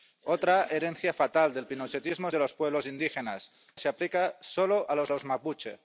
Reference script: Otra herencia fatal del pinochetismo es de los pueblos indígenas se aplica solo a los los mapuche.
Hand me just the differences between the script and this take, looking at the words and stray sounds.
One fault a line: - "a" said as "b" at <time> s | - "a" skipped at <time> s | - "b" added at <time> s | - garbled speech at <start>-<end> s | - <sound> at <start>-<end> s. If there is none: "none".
none